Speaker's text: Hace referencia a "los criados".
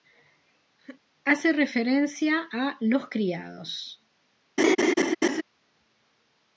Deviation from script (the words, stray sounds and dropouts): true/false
true